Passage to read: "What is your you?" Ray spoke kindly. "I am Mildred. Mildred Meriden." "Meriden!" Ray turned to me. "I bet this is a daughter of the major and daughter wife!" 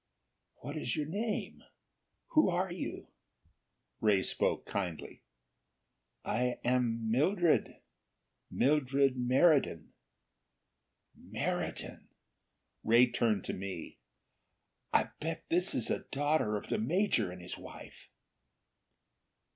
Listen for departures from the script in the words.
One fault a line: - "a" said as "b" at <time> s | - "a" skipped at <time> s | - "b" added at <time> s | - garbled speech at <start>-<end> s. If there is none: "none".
- "name Who are" added at 1.1 s
- "daughter" said as "his" at 17.4 s